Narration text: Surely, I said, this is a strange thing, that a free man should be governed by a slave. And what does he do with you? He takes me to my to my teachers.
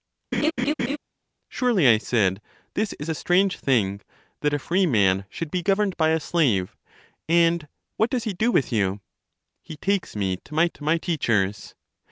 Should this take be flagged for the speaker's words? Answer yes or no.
no